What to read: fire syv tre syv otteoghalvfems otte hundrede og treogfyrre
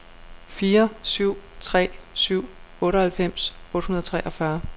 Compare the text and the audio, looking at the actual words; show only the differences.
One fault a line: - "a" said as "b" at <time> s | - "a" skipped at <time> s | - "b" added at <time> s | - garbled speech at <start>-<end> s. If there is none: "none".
none